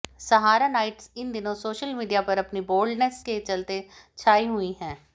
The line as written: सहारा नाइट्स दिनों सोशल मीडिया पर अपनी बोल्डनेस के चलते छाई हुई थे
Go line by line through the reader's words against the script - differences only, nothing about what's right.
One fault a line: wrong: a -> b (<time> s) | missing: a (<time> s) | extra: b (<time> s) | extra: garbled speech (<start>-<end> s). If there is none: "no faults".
extra: इन (1.2 s)
wrong: थे -> हैं (4.8 s)